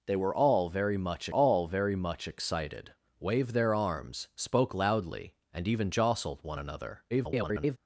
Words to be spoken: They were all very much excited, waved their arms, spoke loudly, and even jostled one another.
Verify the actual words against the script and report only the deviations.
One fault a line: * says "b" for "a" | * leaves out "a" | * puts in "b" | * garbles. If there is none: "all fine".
* puts in "all very much"
* garbles